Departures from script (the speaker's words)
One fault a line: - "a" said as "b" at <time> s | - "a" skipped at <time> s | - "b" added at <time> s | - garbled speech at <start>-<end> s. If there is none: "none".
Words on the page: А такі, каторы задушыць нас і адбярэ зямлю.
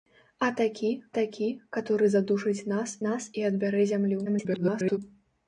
- "такі" added at 1.2 s
- "нас" added at 3.1 s
- garbled speech at 4.3-5.0 s